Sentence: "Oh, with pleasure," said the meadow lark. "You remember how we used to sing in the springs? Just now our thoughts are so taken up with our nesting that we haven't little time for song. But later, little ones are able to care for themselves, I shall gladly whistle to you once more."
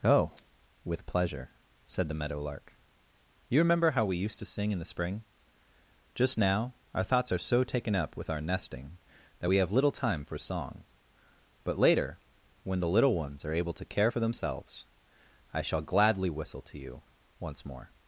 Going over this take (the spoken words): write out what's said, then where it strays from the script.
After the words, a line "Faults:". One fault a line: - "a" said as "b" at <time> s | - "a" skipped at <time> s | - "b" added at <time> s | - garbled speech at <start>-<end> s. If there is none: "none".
"Oh, with pleasure," said the meadow lark. "You remember how we used to sing in the spring? Just now our thoughts are so taken up with our nesting that we have little time for song. But later, when the little ones are able to care for themselves, I shall gladly whistle to you once more."
Faults:
- "springs" said as "spring" at 4.8 s
- "haven't" said as "have" at 9.6 s
- "when the" added at 12.6 s